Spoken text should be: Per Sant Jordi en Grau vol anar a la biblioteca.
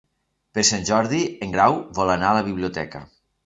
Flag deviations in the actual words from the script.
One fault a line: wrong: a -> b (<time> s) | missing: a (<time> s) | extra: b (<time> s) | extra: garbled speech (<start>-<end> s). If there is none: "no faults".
no faults